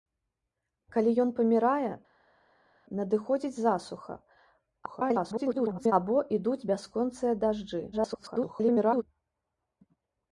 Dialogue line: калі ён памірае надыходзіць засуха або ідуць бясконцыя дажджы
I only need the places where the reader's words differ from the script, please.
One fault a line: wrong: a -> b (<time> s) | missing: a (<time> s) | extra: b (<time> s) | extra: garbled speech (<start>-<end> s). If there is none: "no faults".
extra: garbled speech (4.9-5.9 s)
extra: garbled speech (7.9-9.0 s)